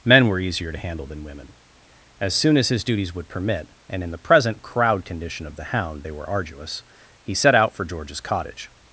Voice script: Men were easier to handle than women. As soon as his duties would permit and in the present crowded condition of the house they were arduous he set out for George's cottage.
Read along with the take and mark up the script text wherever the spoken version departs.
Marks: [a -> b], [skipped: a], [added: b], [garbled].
Men were easier to handle than women. As soon as his duties would permit and in the present [crowded -> crowd] condition of the [house -> hound] they were arduous he set out for George's cottage.